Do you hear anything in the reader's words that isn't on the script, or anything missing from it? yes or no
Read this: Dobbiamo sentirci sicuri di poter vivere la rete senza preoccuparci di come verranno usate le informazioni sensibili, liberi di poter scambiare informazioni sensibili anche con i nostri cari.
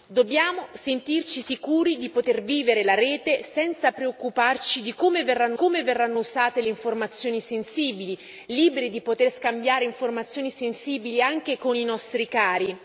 yes